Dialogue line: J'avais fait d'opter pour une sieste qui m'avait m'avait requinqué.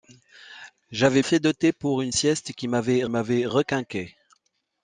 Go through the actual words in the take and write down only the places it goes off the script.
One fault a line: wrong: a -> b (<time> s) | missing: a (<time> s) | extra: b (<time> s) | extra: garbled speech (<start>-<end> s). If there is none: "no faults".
no faults